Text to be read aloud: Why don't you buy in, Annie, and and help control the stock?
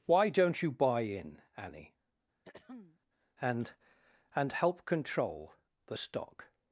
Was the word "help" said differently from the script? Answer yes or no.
no